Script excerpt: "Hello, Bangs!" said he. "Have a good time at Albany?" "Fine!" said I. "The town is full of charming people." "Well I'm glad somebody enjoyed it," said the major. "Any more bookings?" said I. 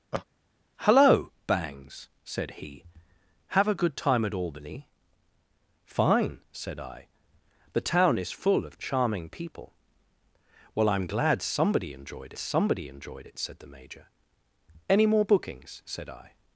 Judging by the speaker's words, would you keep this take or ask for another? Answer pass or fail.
fail